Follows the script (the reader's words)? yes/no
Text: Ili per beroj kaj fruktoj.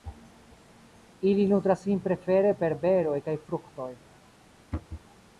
no